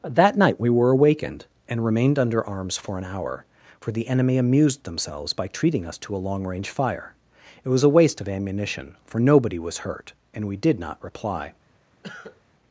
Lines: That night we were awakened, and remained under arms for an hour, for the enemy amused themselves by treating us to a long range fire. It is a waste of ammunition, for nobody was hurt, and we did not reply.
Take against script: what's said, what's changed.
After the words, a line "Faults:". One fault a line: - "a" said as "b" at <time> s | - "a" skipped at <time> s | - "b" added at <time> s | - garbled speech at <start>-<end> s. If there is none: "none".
That night we were awakened, and remained under arms for an hour, for the enemy amused themselves by treating us to a long range fire. It was a waste of ammunition, for nobody was hurt, and we did not reply.
Faults:
- "is" said as "was" at 7.7 s